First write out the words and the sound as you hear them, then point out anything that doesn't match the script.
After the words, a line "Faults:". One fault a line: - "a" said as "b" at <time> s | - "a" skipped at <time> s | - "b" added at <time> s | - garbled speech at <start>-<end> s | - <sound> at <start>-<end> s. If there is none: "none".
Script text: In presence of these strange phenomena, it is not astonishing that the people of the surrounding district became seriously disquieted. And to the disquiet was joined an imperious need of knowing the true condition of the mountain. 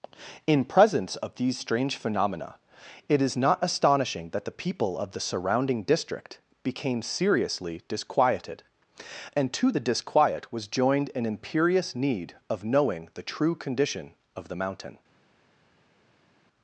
In presence of these strange phenomena, it is not astonishing that the people of the surrounding district became seriously disquieted. And to the disquiet was joined an imperious need of knowing the true condition of the mountain.
Faults:
none